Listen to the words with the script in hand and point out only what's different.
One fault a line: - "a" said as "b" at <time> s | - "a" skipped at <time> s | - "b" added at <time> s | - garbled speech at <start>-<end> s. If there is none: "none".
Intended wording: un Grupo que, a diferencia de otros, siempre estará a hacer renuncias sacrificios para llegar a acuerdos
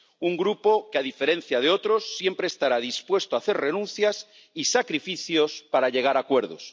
- "dispuesto" added at 2.8 s
- "y" added at 4.5 s